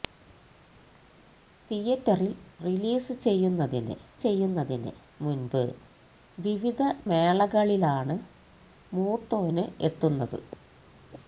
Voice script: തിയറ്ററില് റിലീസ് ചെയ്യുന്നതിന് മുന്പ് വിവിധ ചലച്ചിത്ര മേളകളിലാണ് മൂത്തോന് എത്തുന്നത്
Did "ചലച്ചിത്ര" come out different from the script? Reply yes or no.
yes